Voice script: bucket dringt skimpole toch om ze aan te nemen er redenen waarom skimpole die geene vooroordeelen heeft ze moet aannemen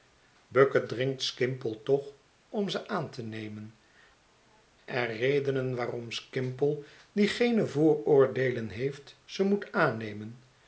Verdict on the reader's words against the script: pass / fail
pass